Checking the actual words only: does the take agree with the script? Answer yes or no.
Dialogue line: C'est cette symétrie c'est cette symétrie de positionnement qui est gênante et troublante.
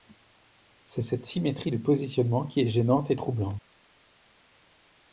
no